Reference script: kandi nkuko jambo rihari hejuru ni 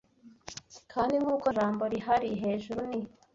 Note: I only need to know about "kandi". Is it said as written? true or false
true